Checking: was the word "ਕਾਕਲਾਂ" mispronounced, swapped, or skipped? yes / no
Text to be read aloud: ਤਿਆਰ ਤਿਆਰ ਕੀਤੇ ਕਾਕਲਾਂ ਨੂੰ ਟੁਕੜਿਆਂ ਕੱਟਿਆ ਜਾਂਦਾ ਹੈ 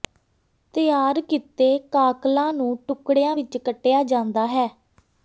no